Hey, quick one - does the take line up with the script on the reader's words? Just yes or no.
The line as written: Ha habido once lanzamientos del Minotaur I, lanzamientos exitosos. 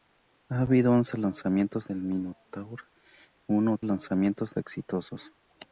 yes